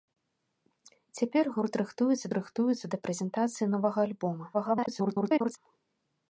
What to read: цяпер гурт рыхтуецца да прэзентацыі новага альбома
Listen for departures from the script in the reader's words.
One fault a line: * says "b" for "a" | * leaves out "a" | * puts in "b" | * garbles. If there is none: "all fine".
* puts in "рыхтуецца"
* garbles